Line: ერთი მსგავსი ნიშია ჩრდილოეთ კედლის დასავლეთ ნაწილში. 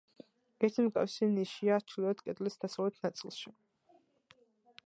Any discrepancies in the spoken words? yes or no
no